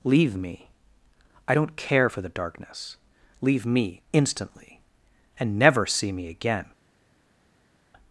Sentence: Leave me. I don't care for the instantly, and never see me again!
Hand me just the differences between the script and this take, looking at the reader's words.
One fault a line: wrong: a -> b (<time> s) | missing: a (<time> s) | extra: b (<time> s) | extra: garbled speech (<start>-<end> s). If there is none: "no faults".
extra: darkness Leave me (2.3 s)